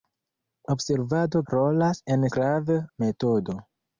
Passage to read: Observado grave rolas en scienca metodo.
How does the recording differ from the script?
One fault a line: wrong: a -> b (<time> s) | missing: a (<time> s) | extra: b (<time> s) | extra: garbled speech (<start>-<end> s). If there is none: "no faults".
missing: grave (1.4 s)
wrong: scienca -> grave (2.3 s)